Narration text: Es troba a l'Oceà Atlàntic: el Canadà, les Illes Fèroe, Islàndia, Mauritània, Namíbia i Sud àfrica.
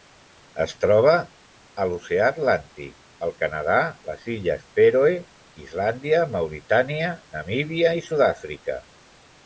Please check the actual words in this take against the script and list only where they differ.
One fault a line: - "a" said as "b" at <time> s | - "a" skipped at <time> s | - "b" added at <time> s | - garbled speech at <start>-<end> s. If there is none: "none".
none